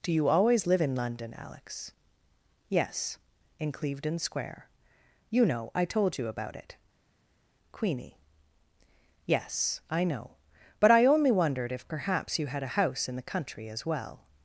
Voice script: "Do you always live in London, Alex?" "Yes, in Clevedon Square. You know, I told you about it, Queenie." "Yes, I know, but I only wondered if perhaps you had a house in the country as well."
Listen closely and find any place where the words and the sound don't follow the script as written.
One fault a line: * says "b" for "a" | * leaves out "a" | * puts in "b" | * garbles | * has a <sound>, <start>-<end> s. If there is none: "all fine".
all fine